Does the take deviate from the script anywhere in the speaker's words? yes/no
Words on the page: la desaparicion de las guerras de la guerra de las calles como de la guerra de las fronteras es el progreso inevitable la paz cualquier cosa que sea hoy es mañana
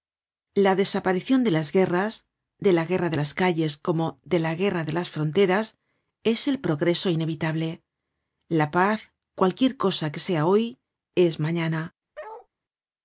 no